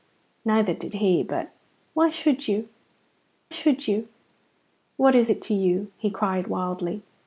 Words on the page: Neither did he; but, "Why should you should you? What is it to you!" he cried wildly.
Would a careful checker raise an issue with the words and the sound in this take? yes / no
no